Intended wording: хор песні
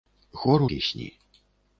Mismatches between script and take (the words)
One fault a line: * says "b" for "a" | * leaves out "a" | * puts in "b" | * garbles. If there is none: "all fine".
all fine